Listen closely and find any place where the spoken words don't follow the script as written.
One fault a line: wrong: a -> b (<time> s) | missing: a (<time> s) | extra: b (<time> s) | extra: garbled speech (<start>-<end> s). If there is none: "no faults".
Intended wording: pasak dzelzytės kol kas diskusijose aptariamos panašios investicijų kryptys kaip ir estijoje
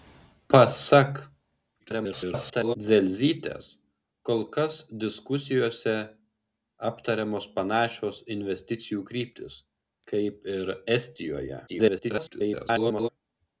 extra: garbled speech (1.8-2.8 s)
extra: garbled speech (11.7-13.1 s)